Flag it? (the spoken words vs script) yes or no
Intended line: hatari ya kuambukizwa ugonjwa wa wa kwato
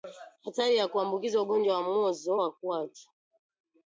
yes